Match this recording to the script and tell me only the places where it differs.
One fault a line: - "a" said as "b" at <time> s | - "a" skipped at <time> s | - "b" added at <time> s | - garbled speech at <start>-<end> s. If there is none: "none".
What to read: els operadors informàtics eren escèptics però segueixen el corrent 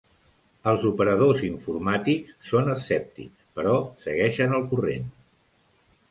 - "eren" said as "són" at 2.5 s